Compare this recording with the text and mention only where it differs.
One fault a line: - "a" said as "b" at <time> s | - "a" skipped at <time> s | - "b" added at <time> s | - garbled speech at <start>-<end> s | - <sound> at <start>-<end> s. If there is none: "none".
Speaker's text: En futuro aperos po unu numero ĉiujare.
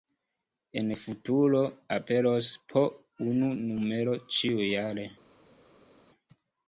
none